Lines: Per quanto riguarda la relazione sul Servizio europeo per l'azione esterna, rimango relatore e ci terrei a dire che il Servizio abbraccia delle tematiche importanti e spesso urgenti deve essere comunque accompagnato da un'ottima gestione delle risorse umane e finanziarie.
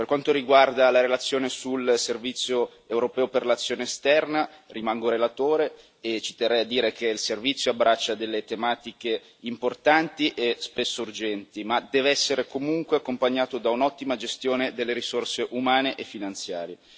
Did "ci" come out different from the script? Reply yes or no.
no